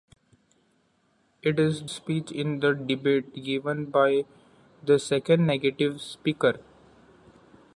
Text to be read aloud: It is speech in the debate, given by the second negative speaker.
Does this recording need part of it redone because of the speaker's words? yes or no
no